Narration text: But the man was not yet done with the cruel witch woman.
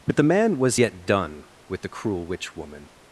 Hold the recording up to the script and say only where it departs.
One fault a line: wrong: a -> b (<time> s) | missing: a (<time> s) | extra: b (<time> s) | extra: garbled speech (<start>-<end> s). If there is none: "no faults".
missing: not (0.8 s)